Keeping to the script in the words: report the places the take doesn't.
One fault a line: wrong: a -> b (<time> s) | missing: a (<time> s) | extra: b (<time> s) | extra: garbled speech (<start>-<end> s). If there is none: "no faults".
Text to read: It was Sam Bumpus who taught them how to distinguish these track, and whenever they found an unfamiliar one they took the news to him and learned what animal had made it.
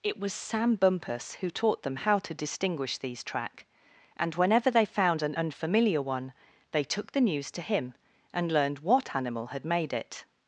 no faults